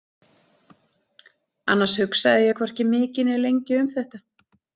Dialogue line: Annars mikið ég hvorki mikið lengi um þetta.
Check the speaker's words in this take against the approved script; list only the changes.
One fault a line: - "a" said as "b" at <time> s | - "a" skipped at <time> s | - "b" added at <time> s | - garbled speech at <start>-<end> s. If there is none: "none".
- "mikið" said as "hugsaði" at 2.0 s
- "né" added at 3.3 s